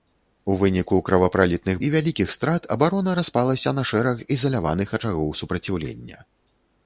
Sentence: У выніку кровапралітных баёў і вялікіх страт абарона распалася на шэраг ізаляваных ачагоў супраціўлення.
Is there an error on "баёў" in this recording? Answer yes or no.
yes